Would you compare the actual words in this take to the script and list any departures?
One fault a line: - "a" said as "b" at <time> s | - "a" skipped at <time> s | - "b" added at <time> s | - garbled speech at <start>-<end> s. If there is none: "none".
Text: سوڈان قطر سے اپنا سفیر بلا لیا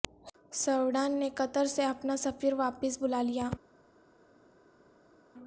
- "نے" added at 1.2 s
- "واپس" added at 2.5 s